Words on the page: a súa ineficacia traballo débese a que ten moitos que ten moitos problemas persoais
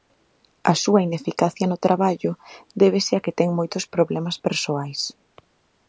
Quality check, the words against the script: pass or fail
fail